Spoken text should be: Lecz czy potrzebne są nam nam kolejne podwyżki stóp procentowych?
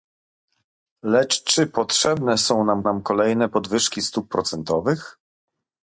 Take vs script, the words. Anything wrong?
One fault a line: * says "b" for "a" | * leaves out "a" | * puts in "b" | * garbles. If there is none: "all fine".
all fine